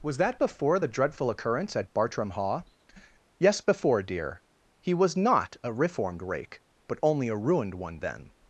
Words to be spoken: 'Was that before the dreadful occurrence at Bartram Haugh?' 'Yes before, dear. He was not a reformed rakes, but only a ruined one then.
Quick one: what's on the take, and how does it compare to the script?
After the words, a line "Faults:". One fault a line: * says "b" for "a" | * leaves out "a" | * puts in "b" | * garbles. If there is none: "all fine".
'Was that before the dreadful occurrence at Bartram Haugh?' 'Yes before, dear. He was not a reformed rake, but only a ruined one then.
Faults:
* says "rake" for "rakes"